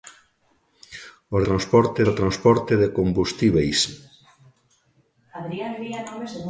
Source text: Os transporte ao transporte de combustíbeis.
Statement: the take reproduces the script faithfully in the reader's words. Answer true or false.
true